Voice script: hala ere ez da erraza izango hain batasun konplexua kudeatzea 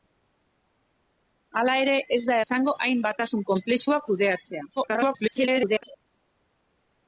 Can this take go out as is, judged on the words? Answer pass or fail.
fail